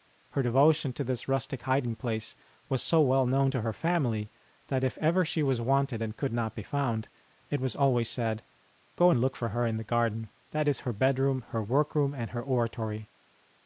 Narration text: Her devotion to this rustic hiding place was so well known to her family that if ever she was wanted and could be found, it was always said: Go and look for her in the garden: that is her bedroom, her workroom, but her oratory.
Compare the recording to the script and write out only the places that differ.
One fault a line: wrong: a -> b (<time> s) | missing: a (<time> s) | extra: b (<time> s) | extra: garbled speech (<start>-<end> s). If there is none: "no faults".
extra: not (6.3 s)
wrong: but -> and (12.1 s)